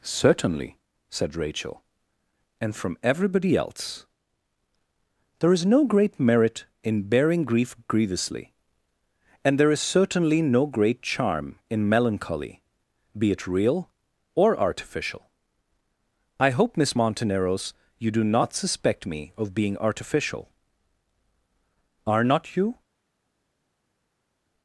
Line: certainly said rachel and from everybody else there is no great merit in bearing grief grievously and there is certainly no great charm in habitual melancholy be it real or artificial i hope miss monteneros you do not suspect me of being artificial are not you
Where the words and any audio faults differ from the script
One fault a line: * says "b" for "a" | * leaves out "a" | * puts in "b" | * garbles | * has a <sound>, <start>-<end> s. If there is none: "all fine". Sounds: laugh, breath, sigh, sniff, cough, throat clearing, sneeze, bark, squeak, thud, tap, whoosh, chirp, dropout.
* leaves out "habitual"